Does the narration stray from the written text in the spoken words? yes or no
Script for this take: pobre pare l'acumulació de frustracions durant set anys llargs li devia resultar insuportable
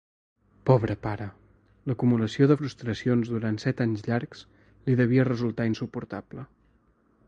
no